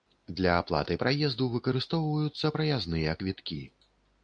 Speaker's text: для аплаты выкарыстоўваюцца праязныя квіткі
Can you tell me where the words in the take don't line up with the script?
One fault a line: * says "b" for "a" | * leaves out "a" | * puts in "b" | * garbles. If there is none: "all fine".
* puts in "праезду"